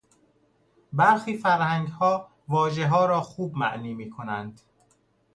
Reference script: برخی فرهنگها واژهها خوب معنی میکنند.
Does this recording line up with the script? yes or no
no